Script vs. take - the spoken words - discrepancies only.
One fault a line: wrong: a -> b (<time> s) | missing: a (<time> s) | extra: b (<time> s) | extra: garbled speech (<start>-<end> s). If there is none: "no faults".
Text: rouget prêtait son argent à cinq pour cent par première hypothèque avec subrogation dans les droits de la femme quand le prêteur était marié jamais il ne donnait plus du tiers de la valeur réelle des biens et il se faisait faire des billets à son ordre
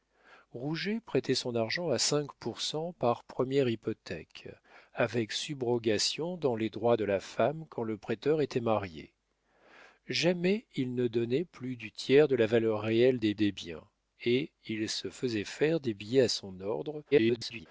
extra: des (13.3 s)
extra: garbled speech (17.1-17.7 s)